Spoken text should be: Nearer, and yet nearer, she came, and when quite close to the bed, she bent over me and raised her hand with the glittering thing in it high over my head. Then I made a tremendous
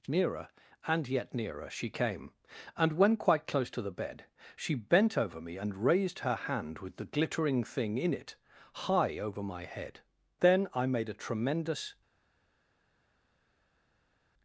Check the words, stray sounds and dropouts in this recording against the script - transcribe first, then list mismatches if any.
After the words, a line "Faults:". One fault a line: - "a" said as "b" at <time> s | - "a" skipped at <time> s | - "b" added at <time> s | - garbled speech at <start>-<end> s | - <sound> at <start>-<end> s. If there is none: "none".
Nearer, and yet nearer, she came, and when quite close to the bed, she bent over me and raised her hand with the glittering thing in it high over my head. Then I made a tremendous
Faults:
none